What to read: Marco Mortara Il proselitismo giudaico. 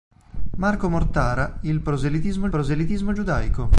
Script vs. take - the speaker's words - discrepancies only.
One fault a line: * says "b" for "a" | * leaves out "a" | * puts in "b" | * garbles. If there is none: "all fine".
* puts in "proselitismo"